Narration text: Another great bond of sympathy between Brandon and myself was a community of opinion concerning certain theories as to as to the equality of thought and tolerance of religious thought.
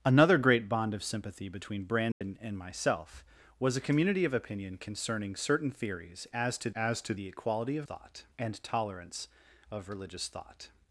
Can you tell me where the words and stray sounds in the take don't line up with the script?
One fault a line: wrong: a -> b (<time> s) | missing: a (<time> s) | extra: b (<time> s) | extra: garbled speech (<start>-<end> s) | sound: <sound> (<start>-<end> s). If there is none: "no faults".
sound: dropout (2.1-2.2 s)